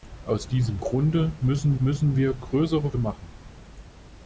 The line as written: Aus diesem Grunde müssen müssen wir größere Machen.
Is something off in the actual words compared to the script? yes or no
no